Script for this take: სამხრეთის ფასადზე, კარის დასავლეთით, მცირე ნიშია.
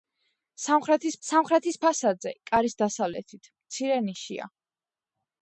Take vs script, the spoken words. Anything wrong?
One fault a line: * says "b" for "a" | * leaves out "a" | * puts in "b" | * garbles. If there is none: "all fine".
* puts in "სამხრეთის"